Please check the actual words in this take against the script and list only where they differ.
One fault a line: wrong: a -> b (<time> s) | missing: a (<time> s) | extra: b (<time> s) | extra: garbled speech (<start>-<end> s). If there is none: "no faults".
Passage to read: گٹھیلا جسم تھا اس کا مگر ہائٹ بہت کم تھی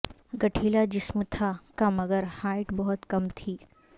missing: اس (1.5 s)